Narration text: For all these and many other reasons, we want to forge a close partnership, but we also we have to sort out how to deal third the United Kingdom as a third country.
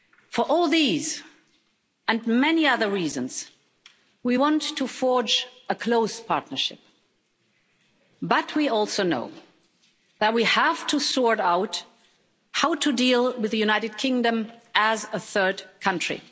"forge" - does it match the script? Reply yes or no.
yes